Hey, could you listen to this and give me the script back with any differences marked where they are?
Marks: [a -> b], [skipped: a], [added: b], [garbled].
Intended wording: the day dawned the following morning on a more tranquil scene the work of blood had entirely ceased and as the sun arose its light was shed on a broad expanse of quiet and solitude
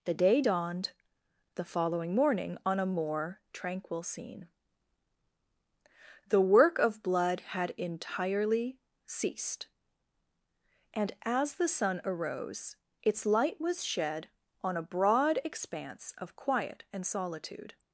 the day dawned the following morning on a more tranquil scene the work of blood had entirely ceased and as the sun arose its light was shed on a broad expanse of quiet and solitude